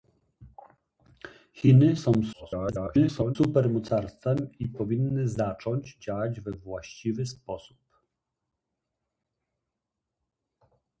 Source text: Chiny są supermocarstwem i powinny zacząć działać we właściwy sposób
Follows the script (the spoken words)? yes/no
no